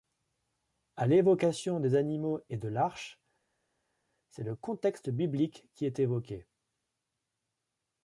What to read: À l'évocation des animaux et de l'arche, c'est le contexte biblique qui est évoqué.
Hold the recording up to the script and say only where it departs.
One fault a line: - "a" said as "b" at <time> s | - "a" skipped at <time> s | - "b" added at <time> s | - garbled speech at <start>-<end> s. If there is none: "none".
none